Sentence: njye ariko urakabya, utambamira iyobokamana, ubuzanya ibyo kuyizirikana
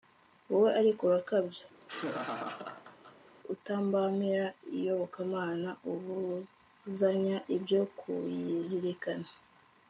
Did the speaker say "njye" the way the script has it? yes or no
no